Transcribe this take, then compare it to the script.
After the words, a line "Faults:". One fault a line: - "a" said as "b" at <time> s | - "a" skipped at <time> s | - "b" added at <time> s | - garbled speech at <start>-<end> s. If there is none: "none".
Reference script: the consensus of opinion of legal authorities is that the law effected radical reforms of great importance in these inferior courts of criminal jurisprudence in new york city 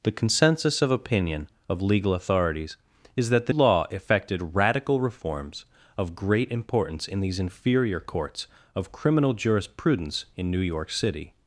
the consensus of opinion of legal authorities is that the law effected radical reforms of great importance in these inferior courts of criminal jurisprudence in new york city
Faults:
none